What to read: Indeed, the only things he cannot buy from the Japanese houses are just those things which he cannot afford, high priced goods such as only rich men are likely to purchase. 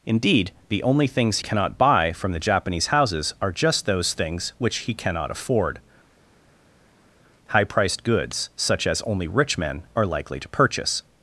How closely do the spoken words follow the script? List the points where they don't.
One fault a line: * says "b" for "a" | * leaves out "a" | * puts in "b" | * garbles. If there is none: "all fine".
* leaves out "he"